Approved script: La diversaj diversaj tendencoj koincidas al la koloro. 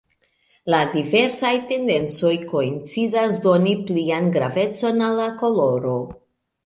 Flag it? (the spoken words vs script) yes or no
yes